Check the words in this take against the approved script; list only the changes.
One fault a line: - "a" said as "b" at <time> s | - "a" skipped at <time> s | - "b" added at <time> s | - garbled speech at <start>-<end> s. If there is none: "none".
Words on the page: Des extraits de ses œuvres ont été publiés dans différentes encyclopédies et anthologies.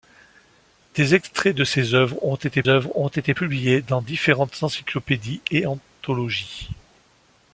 - "œuvres ont été" added at 2.7 s